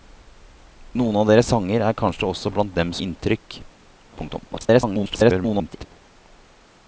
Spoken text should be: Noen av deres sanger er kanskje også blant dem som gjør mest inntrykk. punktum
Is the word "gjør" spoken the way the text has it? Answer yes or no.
no